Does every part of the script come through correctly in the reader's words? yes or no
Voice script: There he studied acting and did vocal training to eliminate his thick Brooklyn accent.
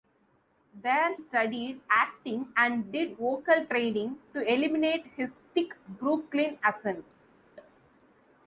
no